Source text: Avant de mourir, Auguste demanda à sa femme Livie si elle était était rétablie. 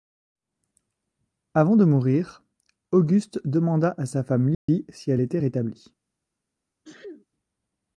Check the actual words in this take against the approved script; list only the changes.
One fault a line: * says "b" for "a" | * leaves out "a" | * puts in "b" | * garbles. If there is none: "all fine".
* leaves out "était"